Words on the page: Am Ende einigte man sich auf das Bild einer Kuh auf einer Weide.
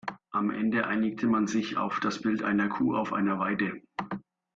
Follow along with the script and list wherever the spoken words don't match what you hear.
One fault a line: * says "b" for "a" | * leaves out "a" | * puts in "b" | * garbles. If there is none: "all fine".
all fine